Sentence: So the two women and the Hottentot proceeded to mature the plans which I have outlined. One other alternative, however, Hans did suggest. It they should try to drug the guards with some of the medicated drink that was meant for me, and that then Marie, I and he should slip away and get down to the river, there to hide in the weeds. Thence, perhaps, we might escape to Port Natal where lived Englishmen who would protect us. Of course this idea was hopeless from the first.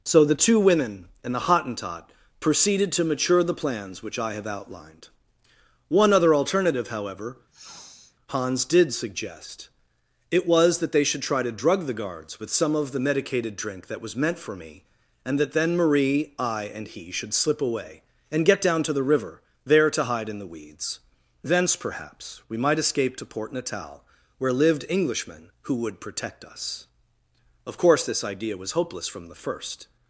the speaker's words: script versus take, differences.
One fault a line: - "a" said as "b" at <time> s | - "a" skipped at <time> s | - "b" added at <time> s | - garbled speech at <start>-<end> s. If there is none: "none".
- "was that" added at 10.5 s